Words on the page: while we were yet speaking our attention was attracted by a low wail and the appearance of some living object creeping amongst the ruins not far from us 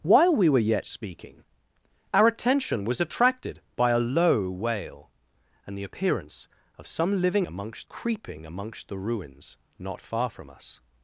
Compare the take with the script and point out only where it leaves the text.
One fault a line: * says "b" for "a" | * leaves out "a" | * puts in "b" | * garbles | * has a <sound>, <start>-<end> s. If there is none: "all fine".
* says "amongst" for "object"